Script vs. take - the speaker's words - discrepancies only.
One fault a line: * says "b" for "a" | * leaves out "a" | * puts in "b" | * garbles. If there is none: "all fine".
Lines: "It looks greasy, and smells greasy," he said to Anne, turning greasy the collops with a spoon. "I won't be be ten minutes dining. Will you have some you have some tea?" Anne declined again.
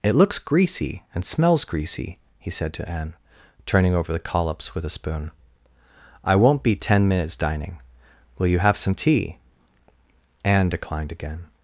* says "over" for "greasy"
* leaves out "be"
* leaves out "you have some"